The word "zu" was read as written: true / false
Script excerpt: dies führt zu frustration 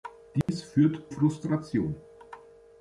false